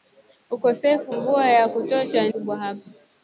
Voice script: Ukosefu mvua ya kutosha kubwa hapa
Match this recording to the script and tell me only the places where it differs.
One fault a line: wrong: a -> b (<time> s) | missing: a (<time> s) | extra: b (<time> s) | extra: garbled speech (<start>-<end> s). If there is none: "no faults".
no faults